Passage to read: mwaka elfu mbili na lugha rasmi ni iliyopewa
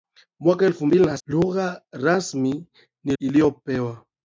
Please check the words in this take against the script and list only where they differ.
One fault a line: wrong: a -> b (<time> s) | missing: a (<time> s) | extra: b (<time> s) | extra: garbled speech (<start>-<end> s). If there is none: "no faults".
no faults